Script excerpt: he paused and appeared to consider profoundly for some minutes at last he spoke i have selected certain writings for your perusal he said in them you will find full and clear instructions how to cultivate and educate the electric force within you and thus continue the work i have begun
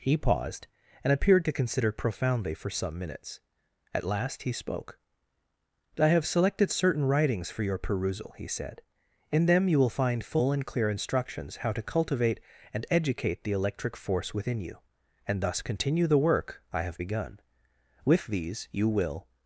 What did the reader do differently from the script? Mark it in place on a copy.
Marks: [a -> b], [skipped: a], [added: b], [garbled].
he paused and appeared to consider profoundly for some minutes at last he spoke i have selected certain writings for your perusal he said in them you will find full and clear instructions how to cultivate and educate the electric force within you and thus continue the work i have begun [added: with these you will]